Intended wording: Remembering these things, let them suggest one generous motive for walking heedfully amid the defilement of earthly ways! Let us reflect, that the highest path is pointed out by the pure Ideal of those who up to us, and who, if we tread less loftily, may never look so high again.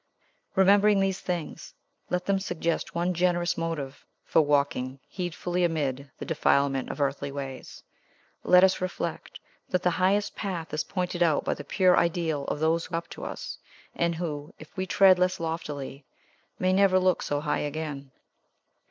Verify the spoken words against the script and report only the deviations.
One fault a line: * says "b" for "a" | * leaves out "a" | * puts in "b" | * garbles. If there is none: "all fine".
all fine